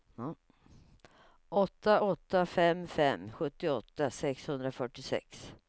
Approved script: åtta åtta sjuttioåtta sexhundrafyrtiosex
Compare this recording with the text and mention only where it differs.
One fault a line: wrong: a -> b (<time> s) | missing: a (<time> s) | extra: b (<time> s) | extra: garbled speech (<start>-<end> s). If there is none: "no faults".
extra: fem fem (2.5 s)